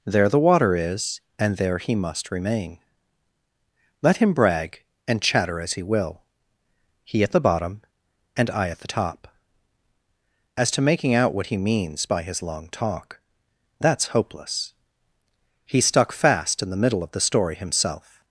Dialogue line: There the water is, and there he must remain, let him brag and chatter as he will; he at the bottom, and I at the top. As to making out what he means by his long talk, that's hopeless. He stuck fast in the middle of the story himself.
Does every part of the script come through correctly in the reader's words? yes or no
yes